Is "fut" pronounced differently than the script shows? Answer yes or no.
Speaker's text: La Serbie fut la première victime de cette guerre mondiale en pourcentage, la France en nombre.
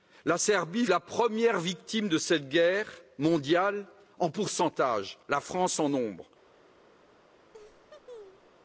yes